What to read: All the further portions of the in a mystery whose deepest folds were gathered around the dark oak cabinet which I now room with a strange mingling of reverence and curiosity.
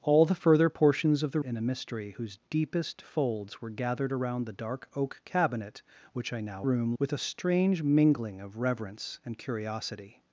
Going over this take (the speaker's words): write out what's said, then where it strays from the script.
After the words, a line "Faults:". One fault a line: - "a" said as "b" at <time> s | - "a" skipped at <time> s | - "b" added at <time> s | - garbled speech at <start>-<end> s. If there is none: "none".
All the further portions of the in a mystery whose deepest folds were gathered around the dark oak cabinet which I now room with a strange mingling of reverence and curiosity.
Faults:
none